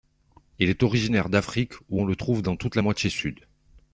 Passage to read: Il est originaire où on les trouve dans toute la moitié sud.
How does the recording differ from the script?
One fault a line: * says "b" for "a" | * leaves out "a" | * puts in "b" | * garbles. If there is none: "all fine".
* puts in "d'Afrique"
* says "le" for "les"